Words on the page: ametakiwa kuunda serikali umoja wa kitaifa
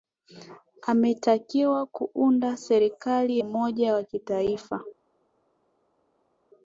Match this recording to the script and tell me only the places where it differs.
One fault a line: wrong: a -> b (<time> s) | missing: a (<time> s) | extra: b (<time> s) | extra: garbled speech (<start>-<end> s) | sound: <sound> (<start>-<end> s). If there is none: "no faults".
no faults